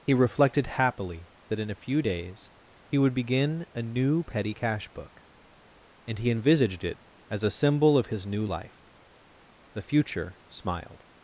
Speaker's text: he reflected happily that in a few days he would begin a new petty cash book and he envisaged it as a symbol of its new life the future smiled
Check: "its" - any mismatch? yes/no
yes